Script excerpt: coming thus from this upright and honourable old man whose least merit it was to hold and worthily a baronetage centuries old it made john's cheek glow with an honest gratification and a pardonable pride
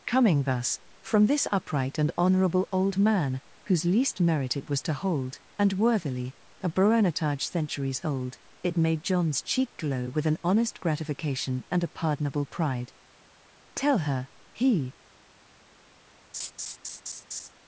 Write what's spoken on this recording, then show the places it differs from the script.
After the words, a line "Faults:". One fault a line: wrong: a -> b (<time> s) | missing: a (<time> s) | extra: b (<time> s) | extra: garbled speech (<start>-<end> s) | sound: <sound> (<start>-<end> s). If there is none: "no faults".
coming thus from this upright and honourable old man whose least merit it was to hold and worthily a baronetage centuries old it made john's cheek glow with an honest gratification and a pardonable pride tell her he
Faults:
extra: tell her he (13.8 s)
sound: laugh (16.3-17.5 s)